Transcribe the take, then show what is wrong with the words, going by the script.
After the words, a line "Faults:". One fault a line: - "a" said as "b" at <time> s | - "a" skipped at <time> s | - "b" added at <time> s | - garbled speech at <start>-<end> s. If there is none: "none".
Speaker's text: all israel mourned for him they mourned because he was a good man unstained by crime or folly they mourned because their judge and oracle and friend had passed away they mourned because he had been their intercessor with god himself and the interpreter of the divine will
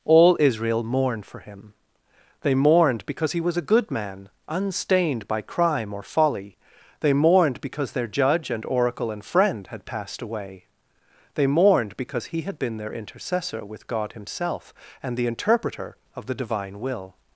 all israel mourned for him they mourned because he was a good man unstained by crime or folly they mourned because their judge and oracle and friend had passed away they mourned because he had been their intercessor with god himself and the interpreter of the divine will
Faults:
none